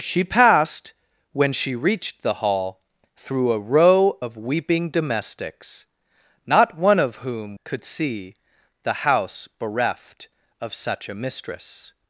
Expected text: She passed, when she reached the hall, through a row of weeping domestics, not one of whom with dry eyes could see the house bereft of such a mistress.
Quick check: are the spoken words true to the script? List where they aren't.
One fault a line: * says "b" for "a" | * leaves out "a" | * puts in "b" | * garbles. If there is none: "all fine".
* leaves out "with dry eyes"